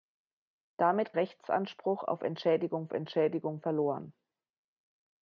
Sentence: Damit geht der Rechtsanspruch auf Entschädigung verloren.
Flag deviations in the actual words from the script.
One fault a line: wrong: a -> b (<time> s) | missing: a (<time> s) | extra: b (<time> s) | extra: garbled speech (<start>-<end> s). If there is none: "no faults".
missing: geht der (1.1 s)
extra: Entschädigung (2.9 s)